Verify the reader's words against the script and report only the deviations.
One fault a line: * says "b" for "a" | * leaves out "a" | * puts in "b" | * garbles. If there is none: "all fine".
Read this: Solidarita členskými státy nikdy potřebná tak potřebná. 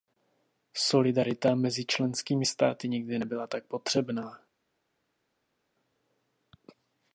* puts in "mezi"
* says "nebyla" for "potřebná"